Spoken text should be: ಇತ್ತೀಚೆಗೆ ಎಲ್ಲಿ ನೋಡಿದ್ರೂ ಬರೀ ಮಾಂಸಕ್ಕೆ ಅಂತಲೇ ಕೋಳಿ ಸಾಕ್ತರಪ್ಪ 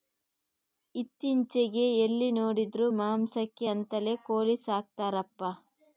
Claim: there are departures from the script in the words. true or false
true